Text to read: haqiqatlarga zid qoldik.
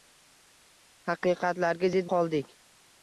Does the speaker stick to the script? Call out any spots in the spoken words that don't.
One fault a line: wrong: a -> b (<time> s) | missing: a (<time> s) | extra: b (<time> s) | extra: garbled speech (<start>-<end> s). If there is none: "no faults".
no faults